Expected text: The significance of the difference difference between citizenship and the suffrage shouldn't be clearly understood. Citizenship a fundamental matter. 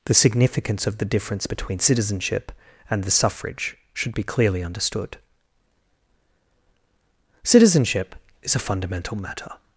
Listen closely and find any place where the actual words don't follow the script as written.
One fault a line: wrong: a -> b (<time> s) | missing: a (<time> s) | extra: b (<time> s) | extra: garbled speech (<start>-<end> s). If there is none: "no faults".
missing: difference (1.5 s)
wrong: shouldn't -> should (3.9 s)
extra: is (8.4 s)